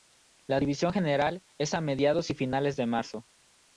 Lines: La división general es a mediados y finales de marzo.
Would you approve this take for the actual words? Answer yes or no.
yes